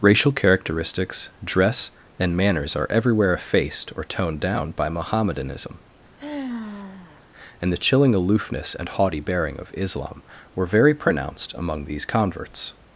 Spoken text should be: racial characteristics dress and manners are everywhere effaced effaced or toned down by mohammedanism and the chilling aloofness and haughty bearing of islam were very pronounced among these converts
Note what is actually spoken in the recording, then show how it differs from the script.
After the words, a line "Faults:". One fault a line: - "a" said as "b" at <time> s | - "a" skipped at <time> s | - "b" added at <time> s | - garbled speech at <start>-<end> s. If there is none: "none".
racial characteristics dress and manners are everywhere effaced or toned down by mohammedanism and the chilling aloofness and haughty bearing of islam were very pronounced among these converts
Faults:
- "effaced" skipped at 3.9 s